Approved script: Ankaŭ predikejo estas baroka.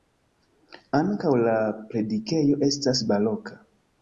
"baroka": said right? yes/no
yes